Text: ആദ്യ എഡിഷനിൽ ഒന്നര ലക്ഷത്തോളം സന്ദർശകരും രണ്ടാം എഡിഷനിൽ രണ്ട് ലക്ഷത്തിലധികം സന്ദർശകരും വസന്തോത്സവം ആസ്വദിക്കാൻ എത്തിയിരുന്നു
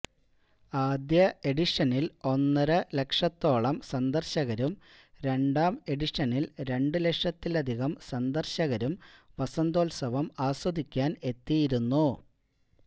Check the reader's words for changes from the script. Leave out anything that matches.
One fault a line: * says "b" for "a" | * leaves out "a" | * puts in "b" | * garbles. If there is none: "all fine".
all fine